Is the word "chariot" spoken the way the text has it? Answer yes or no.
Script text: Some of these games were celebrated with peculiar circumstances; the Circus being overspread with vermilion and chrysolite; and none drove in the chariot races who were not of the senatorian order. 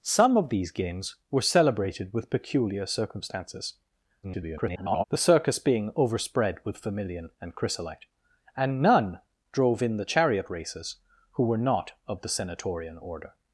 yes